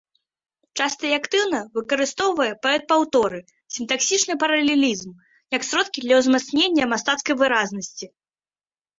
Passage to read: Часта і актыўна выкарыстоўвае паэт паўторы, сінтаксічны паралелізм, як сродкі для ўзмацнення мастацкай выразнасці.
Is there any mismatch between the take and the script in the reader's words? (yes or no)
no